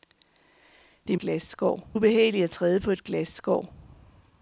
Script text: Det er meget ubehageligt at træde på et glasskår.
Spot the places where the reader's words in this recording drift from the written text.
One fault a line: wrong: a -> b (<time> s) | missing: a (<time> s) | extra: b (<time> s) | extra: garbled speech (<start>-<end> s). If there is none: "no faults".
wrong: meget -> glasskår (1.2 s)